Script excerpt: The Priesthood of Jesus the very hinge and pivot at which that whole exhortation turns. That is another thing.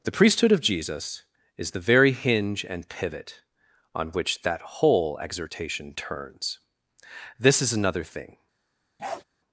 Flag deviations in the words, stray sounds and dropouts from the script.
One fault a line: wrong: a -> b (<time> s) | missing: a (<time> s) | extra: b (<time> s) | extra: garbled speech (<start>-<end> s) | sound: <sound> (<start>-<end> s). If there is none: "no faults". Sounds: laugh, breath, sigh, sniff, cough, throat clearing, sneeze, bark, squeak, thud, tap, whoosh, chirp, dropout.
extra: is (1.6 s)
wrong: at -> on (3.9 s)
wrong: That -> This (7.4 s)
sound: bark (9.0-9.2 s)